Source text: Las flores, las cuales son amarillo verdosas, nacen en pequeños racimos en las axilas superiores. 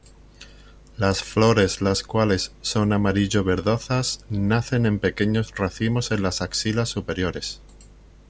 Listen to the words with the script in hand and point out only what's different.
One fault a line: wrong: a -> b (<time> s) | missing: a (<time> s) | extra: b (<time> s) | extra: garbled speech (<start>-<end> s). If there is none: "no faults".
no faults